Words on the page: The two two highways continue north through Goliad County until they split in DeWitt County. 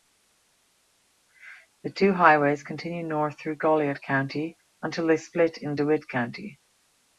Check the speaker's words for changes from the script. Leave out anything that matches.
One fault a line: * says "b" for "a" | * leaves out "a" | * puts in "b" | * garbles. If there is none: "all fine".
* leaves out "two"